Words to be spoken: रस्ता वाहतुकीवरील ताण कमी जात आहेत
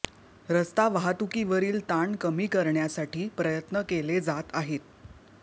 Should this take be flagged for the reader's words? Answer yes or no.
yes